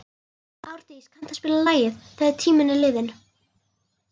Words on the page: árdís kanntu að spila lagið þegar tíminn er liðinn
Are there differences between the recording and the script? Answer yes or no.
no